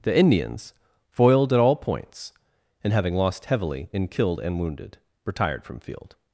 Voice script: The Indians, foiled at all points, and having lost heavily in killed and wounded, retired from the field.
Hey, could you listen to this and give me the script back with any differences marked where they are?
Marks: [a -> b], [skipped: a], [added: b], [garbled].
The Indians, foiled at all points, and having lost heavily in killed and wounded, retired from [skipped: the] field.